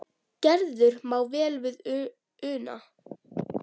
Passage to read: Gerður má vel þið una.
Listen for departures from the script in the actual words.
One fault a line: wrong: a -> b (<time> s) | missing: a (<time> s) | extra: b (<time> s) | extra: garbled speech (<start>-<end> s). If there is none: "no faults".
wrong: þið -> við (1.7 s)